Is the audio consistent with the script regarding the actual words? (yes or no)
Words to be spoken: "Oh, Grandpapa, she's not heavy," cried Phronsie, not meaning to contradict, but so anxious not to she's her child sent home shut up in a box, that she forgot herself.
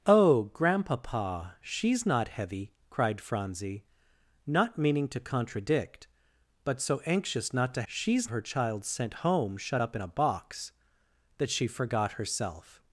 yes